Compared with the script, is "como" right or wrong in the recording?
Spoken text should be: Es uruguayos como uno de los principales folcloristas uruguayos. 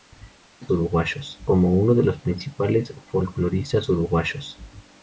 right